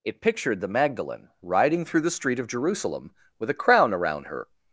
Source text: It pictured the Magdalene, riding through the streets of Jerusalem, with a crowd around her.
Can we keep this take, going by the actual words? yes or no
no